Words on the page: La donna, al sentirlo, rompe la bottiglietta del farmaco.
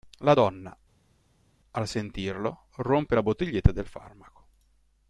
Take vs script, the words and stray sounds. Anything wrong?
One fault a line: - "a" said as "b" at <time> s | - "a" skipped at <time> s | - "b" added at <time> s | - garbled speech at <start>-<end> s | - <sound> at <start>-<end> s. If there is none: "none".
none